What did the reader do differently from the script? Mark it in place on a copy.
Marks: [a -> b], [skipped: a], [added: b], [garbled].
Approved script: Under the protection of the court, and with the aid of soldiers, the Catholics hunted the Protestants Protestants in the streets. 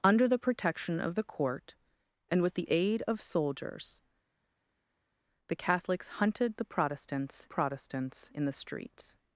Under the protection of the court, and with the aid of soldiers, the Catholics hunted the Protestants Protestants in the streets.